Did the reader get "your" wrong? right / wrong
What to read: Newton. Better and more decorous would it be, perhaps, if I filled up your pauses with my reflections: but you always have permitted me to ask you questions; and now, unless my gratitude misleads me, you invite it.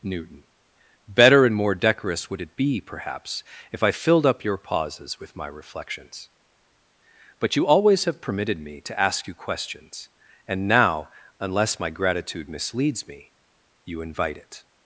right